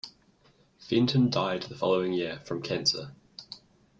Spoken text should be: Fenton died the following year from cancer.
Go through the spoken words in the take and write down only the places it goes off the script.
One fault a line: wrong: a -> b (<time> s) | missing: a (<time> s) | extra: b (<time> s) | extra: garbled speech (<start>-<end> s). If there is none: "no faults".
no faults